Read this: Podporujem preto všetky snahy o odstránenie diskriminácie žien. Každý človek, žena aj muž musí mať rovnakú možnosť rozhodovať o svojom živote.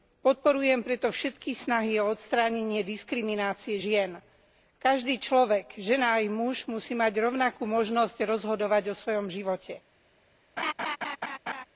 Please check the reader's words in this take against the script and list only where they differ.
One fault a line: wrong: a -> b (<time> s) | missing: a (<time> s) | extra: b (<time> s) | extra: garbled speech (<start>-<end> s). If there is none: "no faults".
no faults